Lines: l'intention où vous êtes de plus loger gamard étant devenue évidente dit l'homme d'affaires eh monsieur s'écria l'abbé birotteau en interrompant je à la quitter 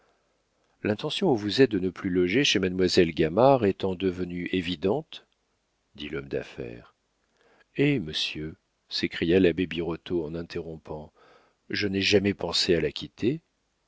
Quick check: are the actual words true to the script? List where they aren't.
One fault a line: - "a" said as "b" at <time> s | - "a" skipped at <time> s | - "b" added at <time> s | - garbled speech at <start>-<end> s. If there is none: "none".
- "ne" added at 1.8 s
- "chez mademoiselle" added at 2.4 s
- "n'ai jamais pensé" added at 11.9 s